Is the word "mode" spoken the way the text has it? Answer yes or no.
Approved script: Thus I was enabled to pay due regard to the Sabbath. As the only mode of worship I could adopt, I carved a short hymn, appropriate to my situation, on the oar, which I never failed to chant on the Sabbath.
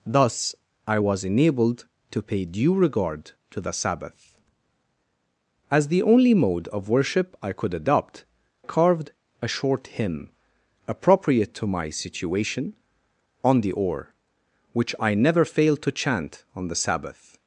yes